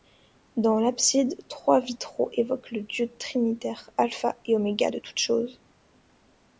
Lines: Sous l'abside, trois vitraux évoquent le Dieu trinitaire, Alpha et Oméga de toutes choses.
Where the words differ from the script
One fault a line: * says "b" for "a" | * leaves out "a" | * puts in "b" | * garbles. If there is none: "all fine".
* says "Dans" for "Sous"